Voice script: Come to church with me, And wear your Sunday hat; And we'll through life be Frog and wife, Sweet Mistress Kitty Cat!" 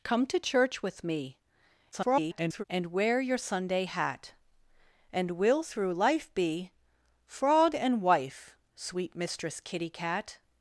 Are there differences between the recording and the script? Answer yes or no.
yes